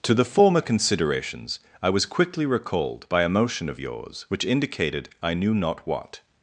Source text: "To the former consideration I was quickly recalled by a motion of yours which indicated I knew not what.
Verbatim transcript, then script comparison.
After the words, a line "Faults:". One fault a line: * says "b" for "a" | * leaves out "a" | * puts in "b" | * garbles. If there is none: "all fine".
"To the former considerations I was quickly recalled by a motion of yours which indicated I knew not what.
Faults:
* says "considerations" for "consideration"